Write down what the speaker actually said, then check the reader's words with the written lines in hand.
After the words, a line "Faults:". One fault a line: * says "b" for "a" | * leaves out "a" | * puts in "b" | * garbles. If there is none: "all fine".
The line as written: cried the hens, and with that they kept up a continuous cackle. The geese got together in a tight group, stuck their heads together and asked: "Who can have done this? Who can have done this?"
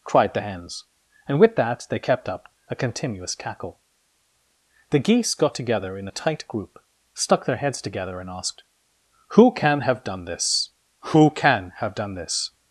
cried the hens, and with that they kept up a continuous cackle. The geese got together in a tight group, stuck their heads together and asked: "Who can have done this? Who can have done this?"
Faults:
all fine